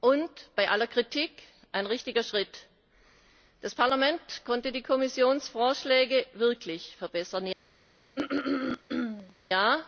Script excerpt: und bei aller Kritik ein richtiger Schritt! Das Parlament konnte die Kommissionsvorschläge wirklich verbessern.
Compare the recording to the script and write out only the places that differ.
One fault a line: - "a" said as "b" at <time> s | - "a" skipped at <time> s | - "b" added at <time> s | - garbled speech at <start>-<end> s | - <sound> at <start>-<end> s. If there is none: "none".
- throat clearing at 8.2-9.3 s